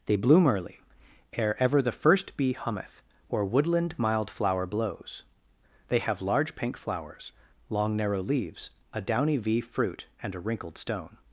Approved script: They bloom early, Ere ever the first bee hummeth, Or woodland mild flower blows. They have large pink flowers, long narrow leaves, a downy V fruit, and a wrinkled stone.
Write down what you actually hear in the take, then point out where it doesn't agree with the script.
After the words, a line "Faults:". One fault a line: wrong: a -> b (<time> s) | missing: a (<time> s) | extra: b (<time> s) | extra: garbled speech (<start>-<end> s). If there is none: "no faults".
They bloom early, Ere ever the first bee hummeth, Or woodland mild flower blows. They have large pink flowers, long narrow leaves, a downy V fruit, and a wrinkled stone.
Faults:
no faults